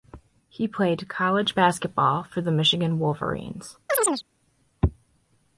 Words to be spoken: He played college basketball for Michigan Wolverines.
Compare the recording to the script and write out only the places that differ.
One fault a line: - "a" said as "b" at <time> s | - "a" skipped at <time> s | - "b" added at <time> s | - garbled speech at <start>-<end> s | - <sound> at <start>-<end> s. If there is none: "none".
- "the" added at 2.4 s
- chirp at 3.9-4.2 s